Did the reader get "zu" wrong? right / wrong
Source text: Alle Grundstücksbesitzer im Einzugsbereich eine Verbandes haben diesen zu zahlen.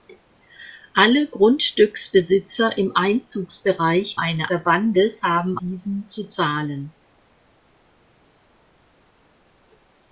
right